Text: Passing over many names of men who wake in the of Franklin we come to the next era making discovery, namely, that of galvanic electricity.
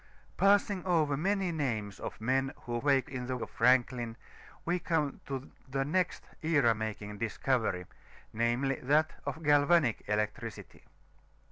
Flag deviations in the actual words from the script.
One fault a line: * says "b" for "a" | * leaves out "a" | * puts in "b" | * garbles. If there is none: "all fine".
all fine